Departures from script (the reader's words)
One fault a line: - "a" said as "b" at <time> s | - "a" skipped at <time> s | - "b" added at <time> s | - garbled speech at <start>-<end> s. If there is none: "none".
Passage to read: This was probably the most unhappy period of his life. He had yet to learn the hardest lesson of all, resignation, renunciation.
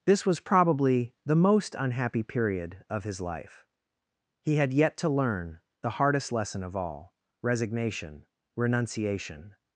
none